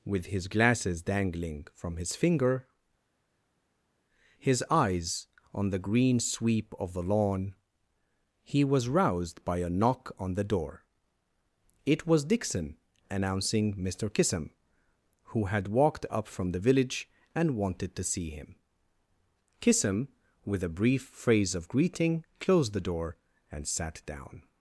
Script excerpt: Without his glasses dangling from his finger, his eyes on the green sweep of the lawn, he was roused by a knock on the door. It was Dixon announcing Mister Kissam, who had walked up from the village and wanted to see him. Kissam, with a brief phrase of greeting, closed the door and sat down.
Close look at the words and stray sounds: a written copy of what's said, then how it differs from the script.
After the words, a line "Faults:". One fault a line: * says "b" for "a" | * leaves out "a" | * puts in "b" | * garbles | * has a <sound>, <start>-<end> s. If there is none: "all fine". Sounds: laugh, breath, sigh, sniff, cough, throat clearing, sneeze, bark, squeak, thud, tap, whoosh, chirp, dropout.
With his glasses dangling from his finger, his eyes on the green sweep of the lawn, he was roused by a knock on the door. It was Dixon announcing Mister Kissam, who had walked up from the village and wanted to see him. Kissam, with a brief phrase of greeting, closed the door and sat down.
Faults:
* says "With" for "Without"